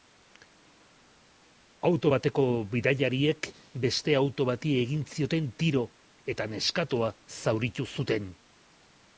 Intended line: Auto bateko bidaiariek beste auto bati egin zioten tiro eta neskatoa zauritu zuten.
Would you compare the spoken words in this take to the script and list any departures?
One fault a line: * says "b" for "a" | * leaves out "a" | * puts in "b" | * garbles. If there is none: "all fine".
all fine